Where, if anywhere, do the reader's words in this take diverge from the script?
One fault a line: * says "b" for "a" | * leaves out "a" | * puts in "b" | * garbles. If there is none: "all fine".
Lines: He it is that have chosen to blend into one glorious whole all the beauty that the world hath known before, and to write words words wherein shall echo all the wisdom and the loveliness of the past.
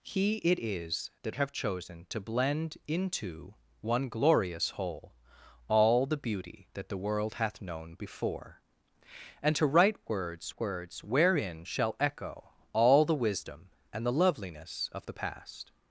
all fine